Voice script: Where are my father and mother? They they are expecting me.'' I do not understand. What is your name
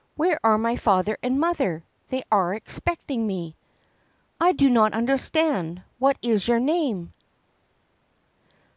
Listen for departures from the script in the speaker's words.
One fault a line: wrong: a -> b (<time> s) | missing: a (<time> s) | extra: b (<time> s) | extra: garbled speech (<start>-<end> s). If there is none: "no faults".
missing: they (2.2 s)